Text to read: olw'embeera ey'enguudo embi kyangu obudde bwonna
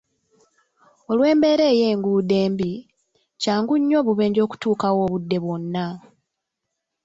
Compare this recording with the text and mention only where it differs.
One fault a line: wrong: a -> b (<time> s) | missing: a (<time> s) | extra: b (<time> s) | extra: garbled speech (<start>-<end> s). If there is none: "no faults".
extra: nnyo obubenje okutuukawo (3.8 s)